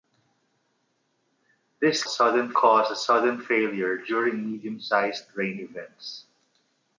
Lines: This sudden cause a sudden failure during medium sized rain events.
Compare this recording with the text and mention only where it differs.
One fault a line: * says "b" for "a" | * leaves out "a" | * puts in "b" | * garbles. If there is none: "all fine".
all fine